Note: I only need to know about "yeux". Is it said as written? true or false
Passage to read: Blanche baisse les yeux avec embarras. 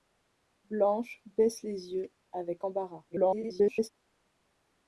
true